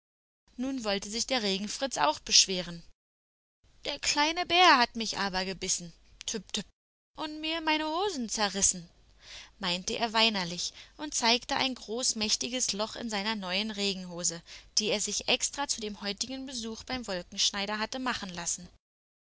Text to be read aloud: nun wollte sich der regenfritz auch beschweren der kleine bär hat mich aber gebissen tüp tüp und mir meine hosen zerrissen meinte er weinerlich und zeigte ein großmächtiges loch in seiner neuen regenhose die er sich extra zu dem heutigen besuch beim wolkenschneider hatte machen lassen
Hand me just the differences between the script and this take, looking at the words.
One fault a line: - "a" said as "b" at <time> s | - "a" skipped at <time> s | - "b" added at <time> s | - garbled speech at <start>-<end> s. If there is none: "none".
none